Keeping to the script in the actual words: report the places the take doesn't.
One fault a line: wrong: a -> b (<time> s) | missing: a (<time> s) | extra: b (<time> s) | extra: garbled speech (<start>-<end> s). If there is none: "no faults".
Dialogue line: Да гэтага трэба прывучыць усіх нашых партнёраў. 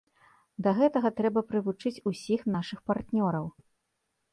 no faults